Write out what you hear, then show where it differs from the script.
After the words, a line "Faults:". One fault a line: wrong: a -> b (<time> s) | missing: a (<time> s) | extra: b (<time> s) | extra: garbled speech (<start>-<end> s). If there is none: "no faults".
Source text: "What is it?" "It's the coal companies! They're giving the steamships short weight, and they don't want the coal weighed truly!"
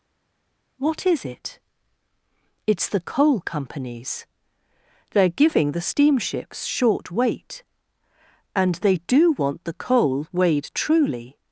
"What is it?" "It's the coal companies! They're giving the steamships short weight, and they do want the coal weighed truly!"
Faults:
wrong: don't -> do (9.1 s)